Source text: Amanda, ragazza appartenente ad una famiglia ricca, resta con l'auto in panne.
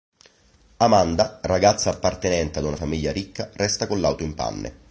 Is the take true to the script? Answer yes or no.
yes